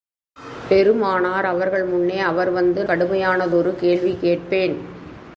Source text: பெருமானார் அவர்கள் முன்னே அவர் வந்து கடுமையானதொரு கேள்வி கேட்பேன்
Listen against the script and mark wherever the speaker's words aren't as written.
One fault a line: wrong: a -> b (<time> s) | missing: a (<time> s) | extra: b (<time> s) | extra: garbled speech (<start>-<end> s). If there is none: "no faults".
no faults